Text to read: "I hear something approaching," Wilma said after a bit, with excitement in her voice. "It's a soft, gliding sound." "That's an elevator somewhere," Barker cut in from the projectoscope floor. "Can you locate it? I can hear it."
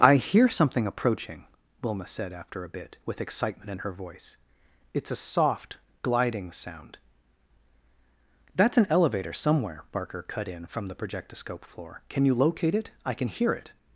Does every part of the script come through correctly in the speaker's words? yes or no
yes